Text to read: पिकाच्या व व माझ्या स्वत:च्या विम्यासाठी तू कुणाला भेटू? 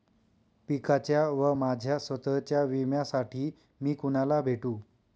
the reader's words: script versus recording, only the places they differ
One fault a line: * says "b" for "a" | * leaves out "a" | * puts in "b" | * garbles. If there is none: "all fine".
* leaves out "व"
* says "मी" for "तू"